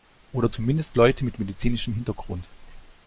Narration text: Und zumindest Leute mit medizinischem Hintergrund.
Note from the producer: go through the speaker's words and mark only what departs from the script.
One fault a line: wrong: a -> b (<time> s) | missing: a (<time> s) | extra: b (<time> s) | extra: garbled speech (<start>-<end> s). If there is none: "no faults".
wrong: Und -> Oder (0.3 s)